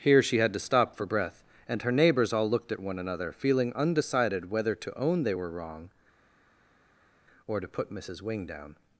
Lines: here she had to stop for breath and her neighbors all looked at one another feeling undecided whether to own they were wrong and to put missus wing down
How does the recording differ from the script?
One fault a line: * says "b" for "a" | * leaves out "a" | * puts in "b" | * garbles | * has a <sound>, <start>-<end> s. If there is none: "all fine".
* says "or" for "and"